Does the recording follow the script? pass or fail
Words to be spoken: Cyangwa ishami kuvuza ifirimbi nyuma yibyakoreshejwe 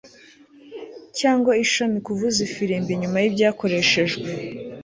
pass